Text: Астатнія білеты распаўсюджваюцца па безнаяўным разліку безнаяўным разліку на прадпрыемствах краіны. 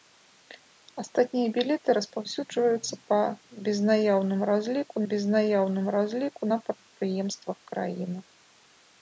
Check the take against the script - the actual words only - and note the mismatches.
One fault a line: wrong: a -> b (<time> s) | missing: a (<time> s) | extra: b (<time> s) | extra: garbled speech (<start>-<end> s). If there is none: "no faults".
no faults